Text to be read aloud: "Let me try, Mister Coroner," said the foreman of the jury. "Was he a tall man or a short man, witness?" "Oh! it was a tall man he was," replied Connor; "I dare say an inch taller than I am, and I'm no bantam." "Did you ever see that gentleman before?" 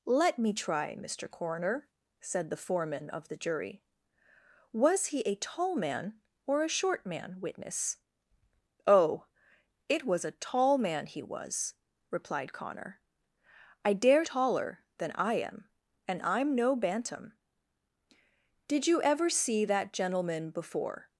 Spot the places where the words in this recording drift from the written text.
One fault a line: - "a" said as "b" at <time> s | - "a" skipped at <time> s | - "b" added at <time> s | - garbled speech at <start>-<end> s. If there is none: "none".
- "say an inch" skipped at 14.2 s